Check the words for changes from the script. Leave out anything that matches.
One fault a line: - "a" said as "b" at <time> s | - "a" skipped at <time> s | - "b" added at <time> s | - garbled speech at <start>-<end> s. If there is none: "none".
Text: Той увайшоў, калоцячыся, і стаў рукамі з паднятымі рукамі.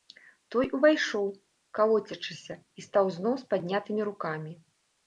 - "рукамі" said as "зноў" at 3.2 s